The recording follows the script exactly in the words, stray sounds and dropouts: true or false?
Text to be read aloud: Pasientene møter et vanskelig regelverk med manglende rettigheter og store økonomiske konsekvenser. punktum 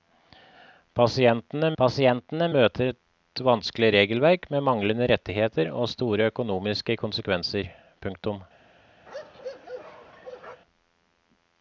false